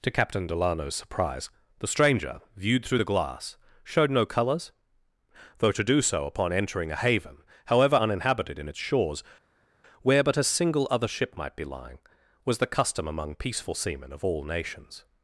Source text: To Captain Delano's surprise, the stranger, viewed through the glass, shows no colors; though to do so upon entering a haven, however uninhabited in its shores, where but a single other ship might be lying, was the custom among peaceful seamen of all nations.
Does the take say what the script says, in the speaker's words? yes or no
no